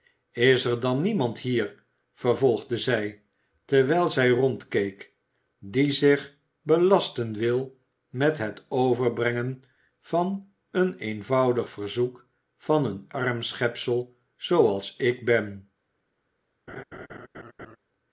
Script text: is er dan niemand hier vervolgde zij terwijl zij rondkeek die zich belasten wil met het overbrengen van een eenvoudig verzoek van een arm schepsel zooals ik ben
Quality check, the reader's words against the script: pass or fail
pass